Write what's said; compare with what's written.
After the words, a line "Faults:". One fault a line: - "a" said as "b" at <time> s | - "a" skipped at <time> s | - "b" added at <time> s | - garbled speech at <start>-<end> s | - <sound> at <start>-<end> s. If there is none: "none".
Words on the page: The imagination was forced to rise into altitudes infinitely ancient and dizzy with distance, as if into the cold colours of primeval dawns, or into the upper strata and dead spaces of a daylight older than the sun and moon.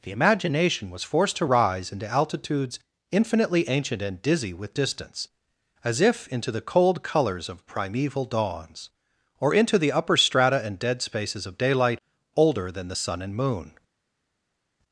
The imagination was forced to rise into altitudes infinitely ancient and dizzy with distance, as if into the cold colours of primeval dawns, or into the upper strata and dead spaces of daylight older than the sun and moon.
Faults:
- "a" skipped at 11.6 s